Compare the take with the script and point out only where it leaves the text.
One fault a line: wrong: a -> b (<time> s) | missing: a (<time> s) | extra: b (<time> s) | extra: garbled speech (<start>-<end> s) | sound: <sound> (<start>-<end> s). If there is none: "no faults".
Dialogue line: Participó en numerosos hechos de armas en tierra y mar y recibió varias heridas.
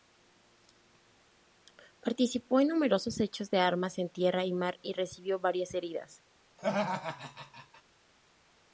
sound: laugh (6.6-7.8 s)